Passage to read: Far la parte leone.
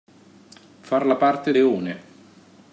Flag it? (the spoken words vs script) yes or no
no